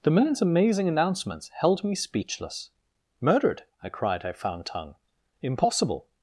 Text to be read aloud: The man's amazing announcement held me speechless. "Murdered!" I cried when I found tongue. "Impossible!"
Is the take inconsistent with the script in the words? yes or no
yes